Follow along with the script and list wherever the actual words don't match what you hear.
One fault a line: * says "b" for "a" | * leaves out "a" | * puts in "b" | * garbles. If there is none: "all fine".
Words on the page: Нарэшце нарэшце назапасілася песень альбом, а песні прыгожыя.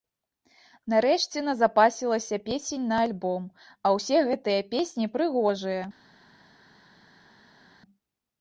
* leaves out "нарэшце"
* puts in "на"
* puts in "ўсе гэтыя"